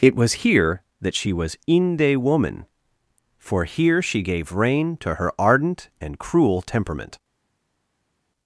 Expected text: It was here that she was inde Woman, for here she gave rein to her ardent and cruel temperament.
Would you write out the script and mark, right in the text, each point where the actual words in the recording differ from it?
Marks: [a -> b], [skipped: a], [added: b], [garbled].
It was here that she was inde Woman, for here she gave rein to her ardent and cruel temperament.